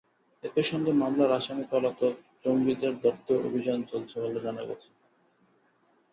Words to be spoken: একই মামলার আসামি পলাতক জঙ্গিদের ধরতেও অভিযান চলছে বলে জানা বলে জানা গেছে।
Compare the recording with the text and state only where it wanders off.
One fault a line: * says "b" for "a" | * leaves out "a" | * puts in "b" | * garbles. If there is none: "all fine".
* puts in "সঙ্গে"
* leaves out "বলে জানা"